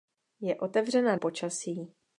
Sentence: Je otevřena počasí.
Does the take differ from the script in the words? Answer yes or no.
no